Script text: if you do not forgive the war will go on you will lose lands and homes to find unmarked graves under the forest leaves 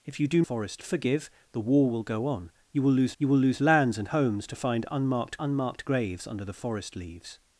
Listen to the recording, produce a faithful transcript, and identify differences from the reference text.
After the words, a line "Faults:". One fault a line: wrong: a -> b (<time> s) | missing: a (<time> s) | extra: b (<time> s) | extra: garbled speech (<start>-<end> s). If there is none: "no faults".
if you do forest forgive the war will go on you will lose you will lose lands and homes to find unmarked unmarked graves under the forest leaves
Faults:
wrong: not -> forest (0.4 s)
extra: you will lose (3.2 s)
extra: unmarked (5.4 s)